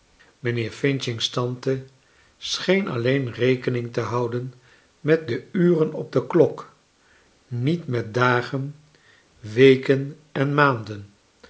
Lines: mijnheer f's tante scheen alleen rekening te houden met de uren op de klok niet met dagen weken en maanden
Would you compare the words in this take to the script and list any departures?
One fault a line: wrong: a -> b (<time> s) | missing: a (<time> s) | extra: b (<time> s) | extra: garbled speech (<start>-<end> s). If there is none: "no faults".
no faults